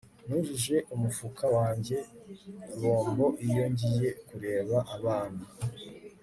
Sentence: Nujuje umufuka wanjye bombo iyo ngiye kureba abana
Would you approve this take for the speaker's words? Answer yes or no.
yes